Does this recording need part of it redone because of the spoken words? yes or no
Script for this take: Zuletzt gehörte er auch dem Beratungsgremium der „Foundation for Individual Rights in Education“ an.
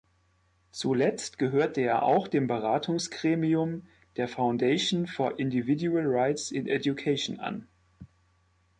no